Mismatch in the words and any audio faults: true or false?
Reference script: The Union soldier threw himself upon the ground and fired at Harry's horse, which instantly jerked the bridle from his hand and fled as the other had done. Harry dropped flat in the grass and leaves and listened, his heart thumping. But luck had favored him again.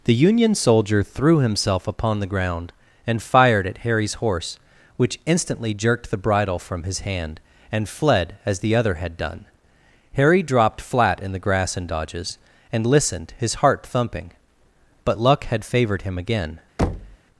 true